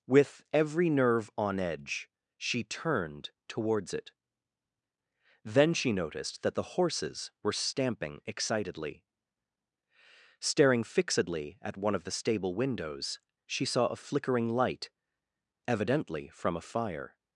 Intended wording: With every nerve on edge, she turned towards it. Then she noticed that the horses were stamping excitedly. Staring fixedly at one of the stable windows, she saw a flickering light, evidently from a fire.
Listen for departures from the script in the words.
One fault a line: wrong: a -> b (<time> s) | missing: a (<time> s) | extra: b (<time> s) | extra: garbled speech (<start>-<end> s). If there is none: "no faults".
no faults